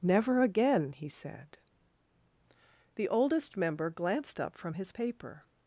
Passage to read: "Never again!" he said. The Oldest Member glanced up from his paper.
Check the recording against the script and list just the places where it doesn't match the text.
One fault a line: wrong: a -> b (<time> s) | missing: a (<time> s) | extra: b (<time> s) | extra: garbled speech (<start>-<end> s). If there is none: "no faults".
no faults